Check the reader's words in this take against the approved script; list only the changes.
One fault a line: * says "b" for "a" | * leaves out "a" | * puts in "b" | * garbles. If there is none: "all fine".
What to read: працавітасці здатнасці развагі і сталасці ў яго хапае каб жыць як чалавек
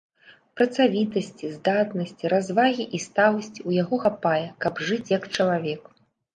all fine